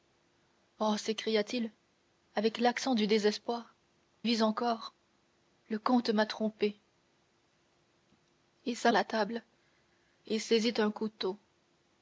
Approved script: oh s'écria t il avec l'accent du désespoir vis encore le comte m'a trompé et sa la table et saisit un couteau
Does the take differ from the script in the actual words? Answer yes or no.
no